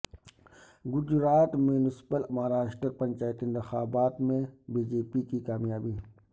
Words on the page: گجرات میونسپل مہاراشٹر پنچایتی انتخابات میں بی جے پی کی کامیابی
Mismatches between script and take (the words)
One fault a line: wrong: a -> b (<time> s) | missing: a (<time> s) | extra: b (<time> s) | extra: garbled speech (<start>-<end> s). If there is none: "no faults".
no faults